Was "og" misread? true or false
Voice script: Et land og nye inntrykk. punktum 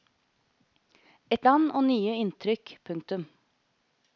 false